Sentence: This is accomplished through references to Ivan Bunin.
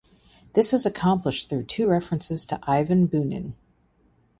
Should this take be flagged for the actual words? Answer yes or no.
yes